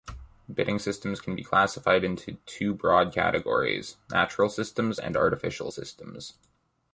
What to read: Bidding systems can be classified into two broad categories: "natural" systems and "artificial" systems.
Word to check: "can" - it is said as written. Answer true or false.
true